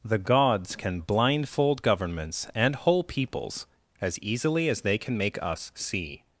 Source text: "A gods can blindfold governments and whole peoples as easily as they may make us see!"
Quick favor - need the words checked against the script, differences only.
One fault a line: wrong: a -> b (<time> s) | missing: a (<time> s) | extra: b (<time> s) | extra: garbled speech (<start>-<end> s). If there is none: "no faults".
wrong: A -> The (0.0 s)
wrong: may -> can (5.0 s)